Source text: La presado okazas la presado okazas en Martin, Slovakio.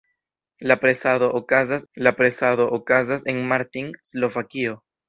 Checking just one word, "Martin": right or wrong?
right